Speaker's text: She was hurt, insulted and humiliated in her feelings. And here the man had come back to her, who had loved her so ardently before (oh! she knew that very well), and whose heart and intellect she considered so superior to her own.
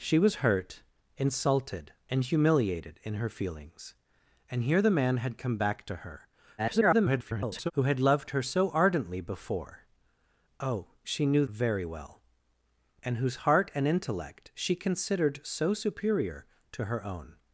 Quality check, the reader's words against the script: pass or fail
fail